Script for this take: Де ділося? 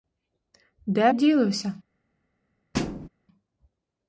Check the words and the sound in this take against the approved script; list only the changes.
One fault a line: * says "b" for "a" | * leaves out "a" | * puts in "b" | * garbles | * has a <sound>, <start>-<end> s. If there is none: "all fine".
* has a thud, 2.7-3.1 s